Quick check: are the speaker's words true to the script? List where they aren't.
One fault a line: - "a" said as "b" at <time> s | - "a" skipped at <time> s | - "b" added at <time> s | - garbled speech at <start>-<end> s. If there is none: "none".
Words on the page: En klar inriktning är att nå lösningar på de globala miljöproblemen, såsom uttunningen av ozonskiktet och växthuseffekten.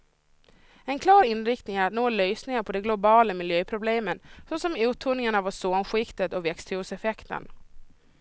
none